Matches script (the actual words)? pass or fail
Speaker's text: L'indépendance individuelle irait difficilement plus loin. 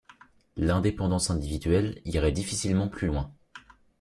pass